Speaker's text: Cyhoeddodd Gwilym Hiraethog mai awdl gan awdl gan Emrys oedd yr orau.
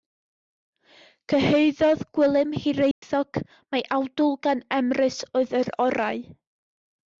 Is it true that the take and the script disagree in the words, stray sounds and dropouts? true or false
true